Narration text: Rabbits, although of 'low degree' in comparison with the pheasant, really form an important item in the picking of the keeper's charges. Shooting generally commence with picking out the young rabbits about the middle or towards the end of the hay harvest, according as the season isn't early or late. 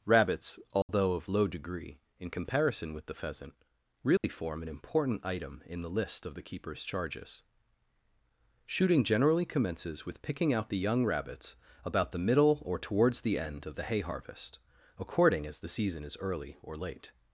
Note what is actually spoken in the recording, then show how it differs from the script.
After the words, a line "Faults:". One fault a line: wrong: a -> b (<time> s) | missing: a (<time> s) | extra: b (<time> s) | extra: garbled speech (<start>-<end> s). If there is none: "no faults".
Rabbits, although of 'low degree' in comparison with the pheasant, really form an important item in the list of the keeper's charges. Shooting generally commences with picking out the young rabbits about the middle or towards the end of the hay harvest, according as the season is early or late.
Faults:
wrong: picking -> list (5.9 s)
wrong: commence -> commences (9.4 s)
wrong: isn't -> is (16.0 s)